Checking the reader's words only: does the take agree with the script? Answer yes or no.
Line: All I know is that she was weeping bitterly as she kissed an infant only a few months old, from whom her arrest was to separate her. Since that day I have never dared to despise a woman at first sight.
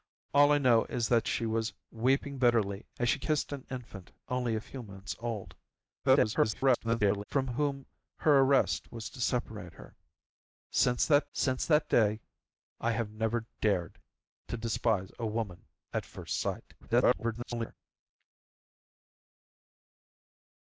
no